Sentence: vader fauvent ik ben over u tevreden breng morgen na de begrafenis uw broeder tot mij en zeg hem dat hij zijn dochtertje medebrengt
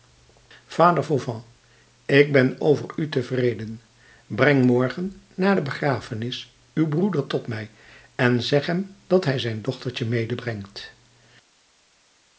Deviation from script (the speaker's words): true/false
false